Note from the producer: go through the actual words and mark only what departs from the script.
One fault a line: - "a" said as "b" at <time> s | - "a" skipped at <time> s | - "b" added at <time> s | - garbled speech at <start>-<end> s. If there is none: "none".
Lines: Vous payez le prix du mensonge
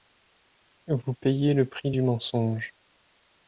none